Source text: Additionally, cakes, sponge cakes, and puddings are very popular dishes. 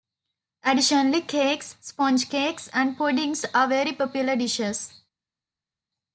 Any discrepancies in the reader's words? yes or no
no